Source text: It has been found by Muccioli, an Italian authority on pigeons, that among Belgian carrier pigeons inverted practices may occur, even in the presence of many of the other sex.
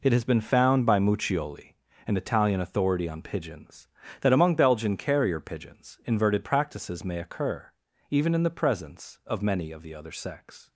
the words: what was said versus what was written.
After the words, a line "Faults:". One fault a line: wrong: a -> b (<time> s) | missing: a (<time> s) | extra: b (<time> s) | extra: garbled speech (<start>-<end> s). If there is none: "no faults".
It has been found by Muccioli, an Italian authority on pigeons, that among Belgian carrier pigeons inverted practices may occur, even in the presence of many of the other sex.
Faults:
no faults